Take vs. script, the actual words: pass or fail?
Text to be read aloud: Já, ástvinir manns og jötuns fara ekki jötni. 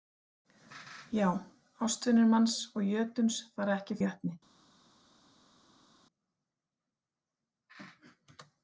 pass